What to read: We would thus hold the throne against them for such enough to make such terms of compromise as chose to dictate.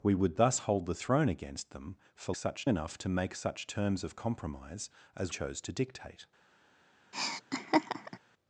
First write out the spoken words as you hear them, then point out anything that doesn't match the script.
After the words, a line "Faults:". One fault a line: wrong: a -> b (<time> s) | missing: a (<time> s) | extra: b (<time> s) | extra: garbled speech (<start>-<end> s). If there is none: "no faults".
We would thus hold the throne against them for such enough to make such terms of compromise as chose to dictate.
Faults:
no faults